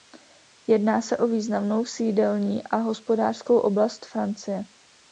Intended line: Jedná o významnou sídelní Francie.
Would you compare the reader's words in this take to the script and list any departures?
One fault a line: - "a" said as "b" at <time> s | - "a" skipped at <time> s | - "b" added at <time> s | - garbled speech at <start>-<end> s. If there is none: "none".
- "se" added at 1.0 s
- "a hospodářskou oblast" added at 2.6 s